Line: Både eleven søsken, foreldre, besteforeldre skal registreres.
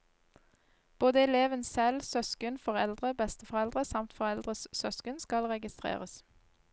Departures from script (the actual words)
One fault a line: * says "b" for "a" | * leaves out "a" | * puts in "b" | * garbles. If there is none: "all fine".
* puts in "selv"
* puts in "samt foreldres søsken"